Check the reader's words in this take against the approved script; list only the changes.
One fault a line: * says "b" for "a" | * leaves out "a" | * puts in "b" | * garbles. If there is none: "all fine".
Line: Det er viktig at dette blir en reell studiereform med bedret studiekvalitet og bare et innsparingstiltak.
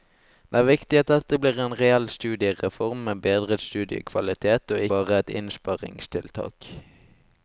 all fine